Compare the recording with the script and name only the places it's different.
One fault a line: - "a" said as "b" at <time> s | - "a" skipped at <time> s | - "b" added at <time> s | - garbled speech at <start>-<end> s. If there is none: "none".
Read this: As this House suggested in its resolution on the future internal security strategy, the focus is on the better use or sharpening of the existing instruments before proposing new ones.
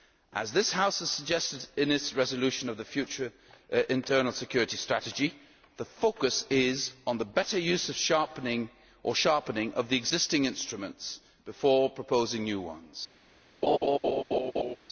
- "has" added at 1.0 s